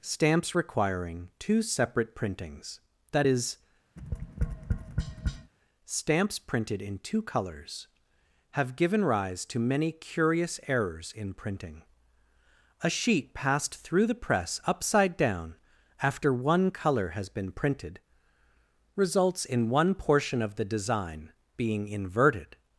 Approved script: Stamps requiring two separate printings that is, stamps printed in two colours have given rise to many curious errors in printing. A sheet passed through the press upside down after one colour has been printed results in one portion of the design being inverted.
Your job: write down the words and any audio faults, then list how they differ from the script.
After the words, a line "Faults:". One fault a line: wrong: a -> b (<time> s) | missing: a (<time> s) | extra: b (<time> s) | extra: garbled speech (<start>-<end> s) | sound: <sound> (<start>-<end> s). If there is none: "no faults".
Stamps requiring two separate printings that is, stamps printed in two colours have given rise to many curious errors in printing. A sheet passed through the press upside down after one colour has been printed results in one portion of the design being inverted.
Faults:
sound: tap (4.0-5.5 s)